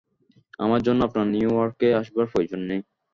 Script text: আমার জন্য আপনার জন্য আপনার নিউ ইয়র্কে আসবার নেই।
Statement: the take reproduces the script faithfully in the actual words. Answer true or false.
false